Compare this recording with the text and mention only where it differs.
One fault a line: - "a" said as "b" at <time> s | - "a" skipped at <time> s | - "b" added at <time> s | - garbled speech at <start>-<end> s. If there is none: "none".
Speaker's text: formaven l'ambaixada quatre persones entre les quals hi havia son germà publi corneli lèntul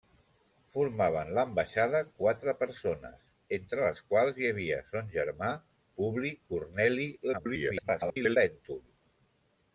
- garbled speech at 7.3-8.4 s